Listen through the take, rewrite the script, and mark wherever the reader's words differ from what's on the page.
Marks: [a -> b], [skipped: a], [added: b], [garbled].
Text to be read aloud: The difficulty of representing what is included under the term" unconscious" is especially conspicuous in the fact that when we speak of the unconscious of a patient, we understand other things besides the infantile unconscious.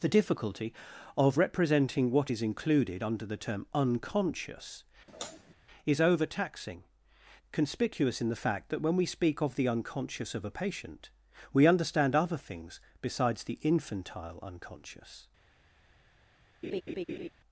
The difficulty of representing what is included under the term" unconscious" is [especially -> overtaxing] conspicuous in the fact that when we speak of the unconscious of a patient, we understand other things besides the infantile unconscious.